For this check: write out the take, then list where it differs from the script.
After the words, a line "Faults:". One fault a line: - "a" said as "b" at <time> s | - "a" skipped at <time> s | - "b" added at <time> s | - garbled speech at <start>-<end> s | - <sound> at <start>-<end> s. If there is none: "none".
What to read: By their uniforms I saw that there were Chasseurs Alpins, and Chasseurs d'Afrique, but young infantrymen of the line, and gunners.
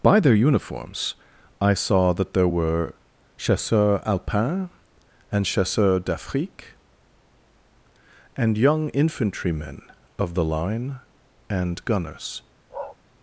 By their uniforms I saw that there were Chasseurs Alpins, and Chasseurs d'Afrique, and young infantrymen of the line, and gunners.
Faults:
- "but" said as "and" at 8.4 s
- bark at 12.7-13.0 s